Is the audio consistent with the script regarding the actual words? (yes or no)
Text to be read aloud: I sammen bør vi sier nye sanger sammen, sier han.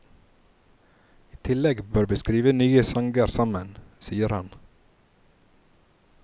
no